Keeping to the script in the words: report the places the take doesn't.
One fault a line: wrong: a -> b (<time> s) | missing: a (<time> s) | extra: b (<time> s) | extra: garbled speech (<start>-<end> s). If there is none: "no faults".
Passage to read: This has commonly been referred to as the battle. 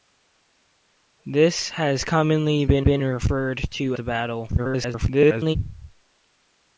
extra: been (2.8 s)
missing: as (4.0 s)
extra: garbled speech (4.6-5.6 s)